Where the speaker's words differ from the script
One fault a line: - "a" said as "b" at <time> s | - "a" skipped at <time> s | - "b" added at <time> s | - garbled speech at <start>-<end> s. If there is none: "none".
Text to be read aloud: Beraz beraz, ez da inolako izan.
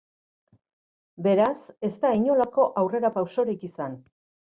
- "beraz" skipped at 1.6 s
- "aurrerapausorik" added at 2.8 s